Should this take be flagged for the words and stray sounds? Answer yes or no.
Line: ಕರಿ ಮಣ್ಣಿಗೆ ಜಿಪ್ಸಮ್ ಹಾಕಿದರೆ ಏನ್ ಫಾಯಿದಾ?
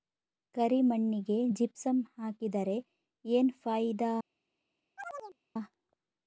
yes